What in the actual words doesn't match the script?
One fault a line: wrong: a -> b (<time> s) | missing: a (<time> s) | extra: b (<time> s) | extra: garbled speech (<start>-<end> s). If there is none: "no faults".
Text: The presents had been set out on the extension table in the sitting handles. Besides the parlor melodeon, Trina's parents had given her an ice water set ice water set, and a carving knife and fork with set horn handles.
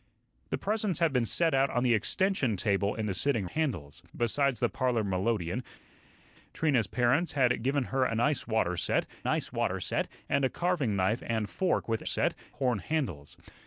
no faults